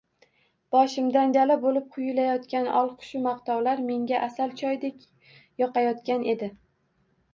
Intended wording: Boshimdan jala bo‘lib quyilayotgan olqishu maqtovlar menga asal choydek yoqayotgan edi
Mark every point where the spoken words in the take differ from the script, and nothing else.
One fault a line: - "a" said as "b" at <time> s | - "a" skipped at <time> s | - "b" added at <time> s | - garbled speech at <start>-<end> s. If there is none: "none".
none